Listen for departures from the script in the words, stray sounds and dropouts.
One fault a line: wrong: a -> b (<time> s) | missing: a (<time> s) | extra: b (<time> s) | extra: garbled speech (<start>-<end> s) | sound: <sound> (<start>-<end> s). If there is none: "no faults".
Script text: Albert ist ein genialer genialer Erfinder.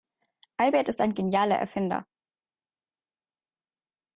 missing: genialer (1.6 s)